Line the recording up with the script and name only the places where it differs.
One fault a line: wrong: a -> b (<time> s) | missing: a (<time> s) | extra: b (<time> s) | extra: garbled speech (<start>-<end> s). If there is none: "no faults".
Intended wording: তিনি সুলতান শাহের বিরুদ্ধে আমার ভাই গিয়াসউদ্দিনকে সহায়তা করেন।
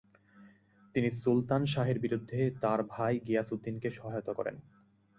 wrong: আমার -> তার (2.6 s)